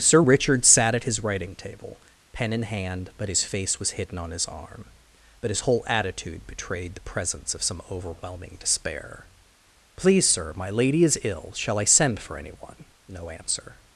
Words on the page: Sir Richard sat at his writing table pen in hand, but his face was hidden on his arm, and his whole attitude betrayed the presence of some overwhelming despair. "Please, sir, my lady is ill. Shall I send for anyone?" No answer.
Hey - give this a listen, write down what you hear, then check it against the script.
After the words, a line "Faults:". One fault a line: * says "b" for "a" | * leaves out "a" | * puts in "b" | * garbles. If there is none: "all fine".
Sir Richard sat at his writing table pen in hand, but his face was hidden on his arm, but his whole attitude betrayed the presence of some overwhelming despair. "Please, sir, my lady is ill. Shall I send for anyone?" No answer.
Faults:
* says "but" for "and"